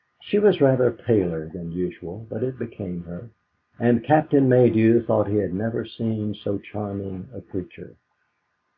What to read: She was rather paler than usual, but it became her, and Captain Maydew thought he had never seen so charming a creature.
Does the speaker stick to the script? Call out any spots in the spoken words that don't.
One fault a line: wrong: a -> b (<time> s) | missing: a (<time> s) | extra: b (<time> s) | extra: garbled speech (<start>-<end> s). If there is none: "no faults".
no faults